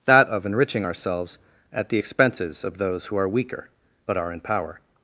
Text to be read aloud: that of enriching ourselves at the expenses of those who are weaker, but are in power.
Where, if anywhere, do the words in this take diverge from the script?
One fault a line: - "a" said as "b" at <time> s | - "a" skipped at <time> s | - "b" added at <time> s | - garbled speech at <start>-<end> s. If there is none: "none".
none